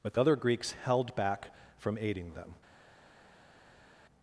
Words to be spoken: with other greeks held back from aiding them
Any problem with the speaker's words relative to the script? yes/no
no